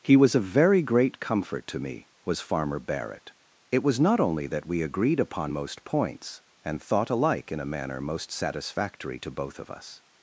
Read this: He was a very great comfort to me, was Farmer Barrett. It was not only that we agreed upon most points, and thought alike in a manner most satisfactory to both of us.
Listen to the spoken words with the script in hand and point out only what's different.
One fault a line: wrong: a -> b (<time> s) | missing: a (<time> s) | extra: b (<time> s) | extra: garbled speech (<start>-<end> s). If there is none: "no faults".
no faults